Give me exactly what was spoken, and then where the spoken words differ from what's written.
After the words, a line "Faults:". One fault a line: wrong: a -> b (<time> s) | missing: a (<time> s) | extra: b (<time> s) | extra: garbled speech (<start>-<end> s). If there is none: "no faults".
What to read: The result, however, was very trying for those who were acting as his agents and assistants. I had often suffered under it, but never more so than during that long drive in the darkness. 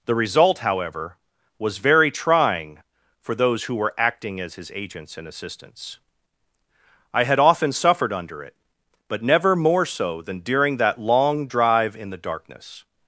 The result, however, was very trying for those who were acting as his agents and assistants. I had often suffered under it, but never more so than during that long drive in the darkness.
Faults:
no faults